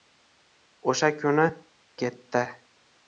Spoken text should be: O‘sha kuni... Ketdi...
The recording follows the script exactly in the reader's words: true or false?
true